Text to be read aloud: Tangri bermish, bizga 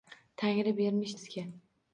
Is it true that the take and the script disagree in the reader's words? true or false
false